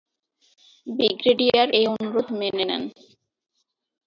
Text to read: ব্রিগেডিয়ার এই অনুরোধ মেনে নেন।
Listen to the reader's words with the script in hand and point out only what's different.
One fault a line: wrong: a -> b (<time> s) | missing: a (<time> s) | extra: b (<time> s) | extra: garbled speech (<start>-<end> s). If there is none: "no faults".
no faults